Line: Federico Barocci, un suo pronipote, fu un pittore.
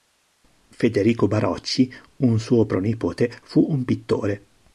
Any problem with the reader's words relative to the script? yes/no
no